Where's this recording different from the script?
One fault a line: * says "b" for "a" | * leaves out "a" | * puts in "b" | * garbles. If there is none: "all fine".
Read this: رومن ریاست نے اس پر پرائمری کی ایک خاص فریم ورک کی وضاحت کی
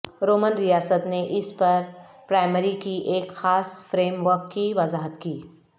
all fine